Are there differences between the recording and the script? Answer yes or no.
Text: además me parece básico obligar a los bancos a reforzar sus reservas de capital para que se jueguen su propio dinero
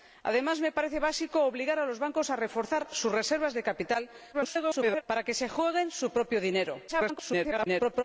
yes